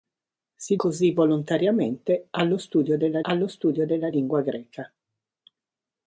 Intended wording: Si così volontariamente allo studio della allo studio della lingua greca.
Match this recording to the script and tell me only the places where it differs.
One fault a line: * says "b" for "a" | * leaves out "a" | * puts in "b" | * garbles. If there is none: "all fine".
all fine